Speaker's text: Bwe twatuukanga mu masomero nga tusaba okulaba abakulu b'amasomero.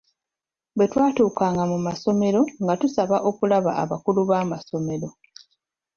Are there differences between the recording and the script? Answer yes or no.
no